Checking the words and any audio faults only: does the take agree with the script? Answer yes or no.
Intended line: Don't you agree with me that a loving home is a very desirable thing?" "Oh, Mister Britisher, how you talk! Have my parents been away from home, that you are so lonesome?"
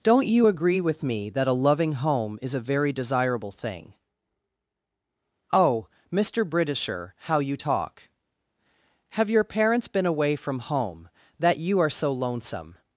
no